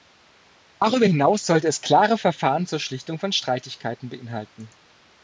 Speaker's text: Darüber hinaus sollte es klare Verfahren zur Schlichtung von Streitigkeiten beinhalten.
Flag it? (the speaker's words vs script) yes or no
no